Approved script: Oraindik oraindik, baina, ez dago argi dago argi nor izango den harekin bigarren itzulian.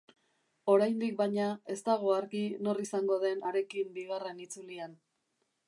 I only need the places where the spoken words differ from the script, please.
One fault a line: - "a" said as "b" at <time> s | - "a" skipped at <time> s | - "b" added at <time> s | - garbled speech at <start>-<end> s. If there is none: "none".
- "oraindik" skipped at 1.1 s
- "dago argi" skipped at 2.4 s